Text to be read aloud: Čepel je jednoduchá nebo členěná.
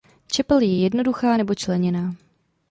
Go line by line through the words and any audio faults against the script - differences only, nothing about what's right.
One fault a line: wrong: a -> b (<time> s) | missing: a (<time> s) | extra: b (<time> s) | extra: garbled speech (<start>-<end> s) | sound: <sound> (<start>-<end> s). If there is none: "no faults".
no faults